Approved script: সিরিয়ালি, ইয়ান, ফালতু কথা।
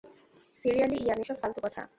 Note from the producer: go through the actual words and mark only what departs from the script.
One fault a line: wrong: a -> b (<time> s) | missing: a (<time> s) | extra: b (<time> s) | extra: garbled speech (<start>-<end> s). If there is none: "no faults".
extra: এসব (1.2 s)